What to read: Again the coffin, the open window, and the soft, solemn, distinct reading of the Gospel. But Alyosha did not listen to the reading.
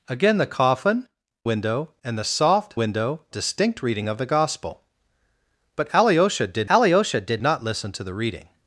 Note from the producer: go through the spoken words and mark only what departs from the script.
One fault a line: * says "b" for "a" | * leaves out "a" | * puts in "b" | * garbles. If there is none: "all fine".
* leaves out "the open"
* says "window" for "solemn"
* puts in "Alyosha did"